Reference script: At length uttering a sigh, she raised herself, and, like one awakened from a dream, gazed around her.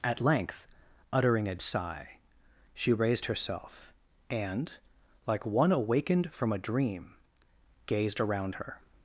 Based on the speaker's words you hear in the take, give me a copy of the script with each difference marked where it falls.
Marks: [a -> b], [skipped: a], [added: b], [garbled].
At length uttering a sigh, she raised herself, and, like one awakened from a dream, gazed around her.